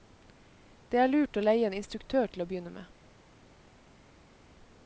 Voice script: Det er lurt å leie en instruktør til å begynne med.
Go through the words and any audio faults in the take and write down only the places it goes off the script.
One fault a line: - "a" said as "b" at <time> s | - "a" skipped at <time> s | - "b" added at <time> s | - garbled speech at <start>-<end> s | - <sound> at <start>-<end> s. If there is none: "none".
none